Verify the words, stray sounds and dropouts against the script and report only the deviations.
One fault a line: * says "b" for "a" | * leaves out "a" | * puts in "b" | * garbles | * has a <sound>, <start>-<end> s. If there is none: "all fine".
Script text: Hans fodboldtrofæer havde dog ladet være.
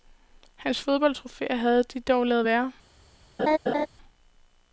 * puts in "de"
* has a laugh, 3.4-3.9 s